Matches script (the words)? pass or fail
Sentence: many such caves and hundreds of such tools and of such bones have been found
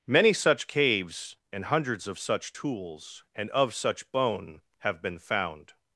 fail